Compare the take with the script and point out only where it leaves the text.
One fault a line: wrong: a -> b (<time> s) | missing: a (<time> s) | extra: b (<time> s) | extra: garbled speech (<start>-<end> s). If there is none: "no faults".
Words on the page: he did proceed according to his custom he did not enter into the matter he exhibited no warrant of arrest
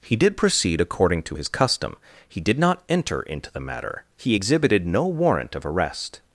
no faults